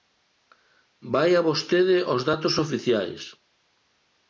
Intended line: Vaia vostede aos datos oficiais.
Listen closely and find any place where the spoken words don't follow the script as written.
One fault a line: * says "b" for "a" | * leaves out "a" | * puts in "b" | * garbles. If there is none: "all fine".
all fine